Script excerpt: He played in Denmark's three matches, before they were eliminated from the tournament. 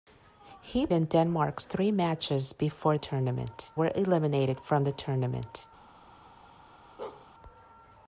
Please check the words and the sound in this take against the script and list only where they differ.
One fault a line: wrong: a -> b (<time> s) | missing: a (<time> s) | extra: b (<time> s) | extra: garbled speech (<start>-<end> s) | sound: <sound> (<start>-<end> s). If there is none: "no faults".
missing: played (0.9 s)
wrong: they -> tournament (3.0 s)
sound: bark (7.0-7.3 s)